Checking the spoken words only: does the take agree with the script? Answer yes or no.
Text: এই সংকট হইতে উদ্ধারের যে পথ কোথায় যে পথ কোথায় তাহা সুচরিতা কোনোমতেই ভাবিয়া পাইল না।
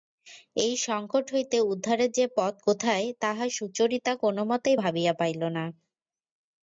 no